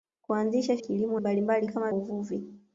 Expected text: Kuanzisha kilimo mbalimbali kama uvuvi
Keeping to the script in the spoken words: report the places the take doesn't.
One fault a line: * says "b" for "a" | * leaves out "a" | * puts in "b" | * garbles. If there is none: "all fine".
all fine